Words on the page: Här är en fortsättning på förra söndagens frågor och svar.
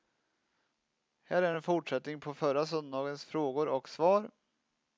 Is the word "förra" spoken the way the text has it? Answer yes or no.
yes